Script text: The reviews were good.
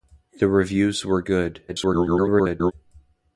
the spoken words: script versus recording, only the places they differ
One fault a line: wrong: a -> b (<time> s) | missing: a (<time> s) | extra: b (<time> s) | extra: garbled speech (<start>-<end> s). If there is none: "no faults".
extra: garbled speech (1.7-2.7 s)